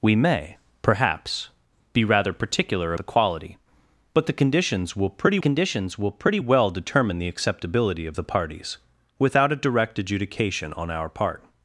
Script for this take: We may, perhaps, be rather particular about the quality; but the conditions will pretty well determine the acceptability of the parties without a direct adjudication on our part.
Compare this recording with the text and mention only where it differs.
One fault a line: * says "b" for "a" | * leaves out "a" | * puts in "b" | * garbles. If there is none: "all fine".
* leaves out "about"
* puts in "conditions will pretty"